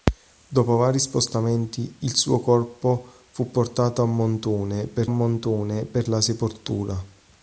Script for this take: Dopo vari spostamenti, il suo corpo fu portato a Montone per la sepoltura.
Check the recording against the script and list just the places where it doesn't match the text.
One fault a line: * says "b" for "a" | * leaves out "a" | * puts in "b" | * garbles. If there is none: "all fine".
* puts in "Montone per"